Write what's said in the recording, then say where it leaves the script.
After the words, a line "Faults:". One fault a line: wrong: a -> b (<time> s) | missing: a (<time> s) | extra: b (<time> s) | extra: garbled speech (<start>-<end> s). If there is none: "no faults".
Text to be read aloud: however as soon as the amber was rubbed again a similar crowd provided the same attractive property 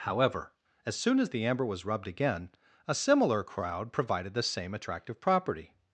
however as soon as the amber was rubbed again a similar crowd provided the same attractive property
Faults:
no faults